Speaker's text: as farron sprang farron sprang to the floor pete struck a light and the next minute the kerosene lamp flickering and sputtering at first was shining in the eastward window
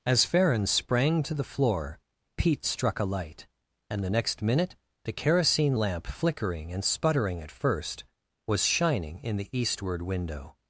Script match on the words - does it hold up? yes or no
no